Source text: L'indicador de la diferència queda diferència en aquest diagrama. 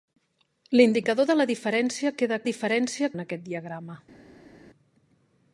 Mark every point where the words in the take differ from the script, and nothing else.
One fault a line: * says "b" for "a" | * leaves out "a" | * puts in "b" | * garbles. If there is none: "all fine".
all fine